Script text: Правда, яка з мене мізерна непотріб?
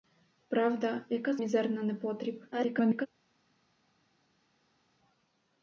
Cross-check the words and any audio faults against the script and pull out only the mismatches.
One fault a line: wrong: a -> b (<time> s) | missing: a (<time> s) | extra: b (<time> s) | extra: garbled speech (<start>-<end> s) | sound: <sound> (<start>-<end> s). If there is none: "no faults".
missing: мене (1.4 s)
extra: garbled speech (2.5-3.1 s)